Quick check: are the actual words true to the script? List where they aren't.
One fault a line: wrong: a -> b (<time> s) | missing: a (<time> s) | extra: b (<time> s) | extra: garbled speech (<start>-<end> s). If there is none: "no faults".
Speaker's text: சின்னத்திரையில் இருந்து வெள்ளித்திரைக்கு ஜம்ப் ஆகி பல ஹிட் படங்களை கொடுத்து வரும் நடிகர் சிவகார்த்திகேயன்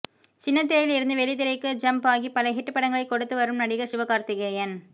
no faults